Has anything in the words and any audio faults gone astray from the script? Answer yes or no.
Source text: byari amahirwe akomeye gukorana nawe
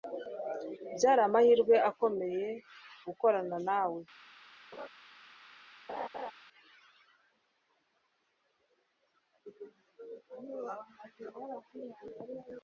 yes